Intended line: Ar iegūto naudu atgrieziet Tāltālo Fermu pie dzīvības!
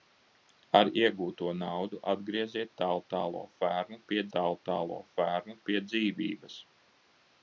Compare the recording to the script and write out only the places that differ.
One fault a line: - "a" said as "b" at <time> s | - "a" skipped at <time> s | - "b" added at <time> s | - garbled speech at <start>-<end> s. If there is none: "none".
- "Tāltālo Fermu pie" added at 4.4 s